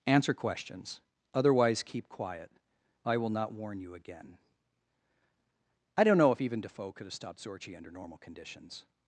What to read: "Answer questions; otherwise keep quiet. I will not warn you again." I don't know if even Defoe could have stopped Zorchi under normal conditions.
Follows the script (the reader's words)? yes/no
yes